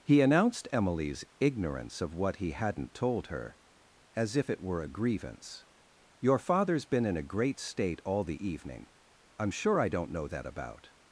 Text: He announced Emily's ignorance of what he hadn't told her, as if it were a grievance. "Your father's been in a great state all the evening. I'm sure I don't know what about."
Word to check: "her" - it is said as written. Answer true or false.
true